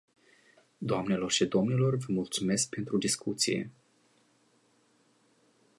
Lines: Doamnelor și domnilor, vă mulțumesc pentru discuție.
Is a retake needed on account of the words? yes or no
no